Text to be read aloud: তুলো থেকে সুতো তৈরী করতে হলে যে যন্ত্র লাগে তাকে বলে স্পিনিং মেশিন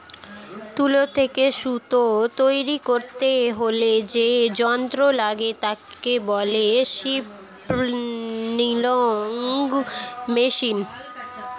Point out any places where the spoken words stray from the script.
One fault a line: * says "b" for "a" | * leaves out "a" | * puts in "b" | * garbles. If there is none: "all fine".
all fine